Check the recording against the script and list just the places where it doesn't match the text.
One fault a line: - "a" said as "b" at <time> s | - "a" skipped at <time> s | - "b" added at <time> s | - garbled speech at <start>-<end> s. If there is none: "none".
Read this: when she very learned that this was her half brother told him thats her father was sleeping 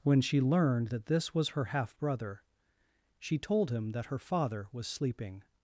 - "very" skipped at 0.4 s
- "she" added at 3.2 s
- "thats" said as "that" at 3.9 s